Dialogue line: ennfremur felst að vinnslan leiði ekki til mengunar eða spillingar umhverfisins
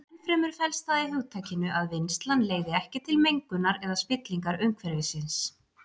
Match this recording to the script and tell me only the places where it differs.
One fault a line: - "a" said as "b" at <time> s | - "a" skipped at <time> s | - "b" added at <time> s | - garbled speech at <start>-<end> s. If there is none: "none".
- "það í hugtakinu" added at 0.9 s